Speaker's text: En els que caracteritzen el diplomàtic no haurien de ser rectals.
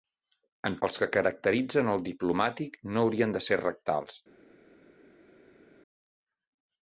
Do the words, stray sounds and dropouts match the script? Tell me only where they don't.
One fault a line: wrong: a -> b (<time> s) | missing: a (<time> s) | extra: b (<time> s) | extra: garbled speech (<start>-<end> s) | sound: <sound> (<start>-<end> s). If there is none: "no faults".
no faults